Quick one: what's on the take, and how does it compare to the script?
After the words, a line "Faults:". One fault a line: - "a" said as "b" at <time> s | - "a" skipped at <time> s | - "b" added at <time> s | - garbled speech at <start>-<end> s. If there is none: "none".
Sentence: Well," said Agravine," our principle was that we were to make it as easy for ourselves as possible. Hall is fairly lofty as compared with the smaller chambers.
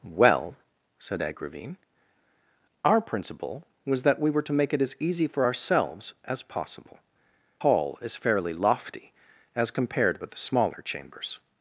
Well," said Agravine," our principle was that we were to make it as easy for ourselves as possible. Hall is fairly lofty as compared with the smaller chambers.
Faults:
none